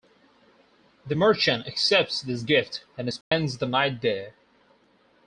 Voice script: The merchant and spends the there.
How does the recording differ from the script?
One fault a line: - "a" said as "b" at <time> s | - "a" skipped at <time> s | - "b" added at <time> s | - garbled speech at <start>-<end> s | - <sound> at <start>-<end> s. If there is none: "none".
- "accepts this gift" added at 1.7 s
- dropout at 3.2-3.3 s
- "night" added at 3.7 s